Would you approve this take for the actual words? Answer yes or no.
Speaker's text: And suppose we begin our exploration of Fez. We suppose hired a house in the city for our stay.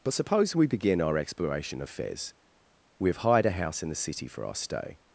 no